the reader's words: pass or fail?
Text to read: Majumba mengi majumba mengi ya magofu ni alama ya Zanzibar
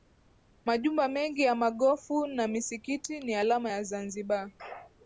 fail